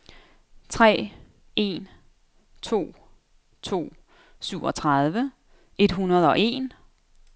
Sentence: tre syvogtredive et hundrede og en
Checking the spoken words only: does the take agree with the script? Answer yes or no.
no